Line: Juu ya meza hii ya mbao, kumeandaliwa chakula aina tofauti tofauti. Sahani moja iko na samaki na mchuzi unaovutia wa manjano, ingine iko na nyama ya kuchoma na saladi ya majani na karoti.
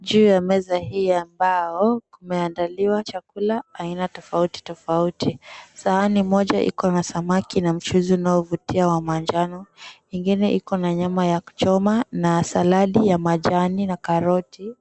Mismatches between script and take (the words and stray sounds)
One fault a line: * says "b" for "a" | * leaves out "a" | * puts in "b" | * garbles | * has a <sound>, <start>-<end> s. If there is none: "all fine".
all fine